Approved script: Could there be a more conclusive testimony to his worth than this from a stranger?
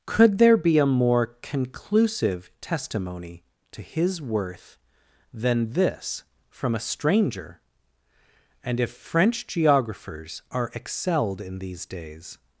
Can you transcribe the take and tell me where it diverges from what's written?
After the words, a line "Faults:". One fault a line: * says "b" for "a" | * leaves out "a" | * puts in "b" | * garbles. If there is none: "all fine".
Could there be a more conclusive testimony to his worth than this from a stranger? and if French geographers are excelled in these days
Faults:
* puts in "and if French geographers are excelled in these days"